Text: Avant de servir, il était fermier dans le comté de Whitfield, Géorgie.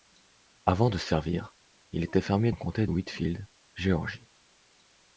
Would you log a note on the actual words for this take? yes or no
yes